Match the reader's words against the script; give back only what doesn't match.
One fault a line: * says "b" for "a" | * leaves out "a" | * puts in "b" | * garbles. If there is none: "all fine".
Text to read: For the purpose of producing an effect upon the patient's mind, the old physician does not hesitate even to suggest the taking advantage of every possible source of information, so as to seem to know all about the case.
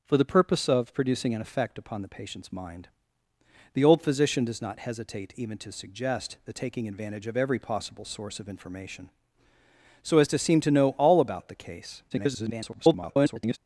* garbles